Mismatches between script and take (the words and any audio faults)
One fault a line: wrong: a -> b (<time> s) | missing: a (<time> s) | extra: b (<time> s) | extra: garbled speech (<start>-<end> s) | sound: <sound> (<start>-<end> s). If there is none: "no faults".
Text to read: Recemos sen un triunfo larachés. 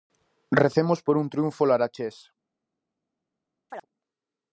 wrong: sen -> por (1.0 s)
sound: chirp (3.7-3.9 s)